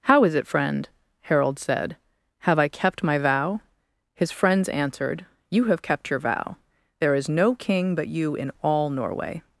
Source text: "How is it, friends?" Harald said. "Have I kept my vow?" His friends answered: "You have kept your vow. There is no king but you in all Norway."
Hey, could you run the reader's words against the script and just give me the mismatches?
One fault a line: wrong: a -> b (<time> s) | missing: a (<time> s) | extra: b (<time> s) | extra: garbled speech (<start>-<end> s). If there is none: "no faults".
wrong: friends -> friend (0.5 s)